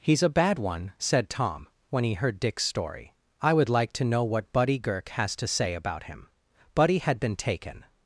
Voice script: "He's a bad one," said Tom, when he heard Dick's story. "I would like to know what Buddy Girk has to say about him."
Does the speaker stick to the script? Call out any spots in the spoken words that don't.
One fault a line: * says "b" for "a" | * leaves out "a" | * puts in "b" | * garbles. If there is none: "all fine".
* puts in "Buddy had been taken"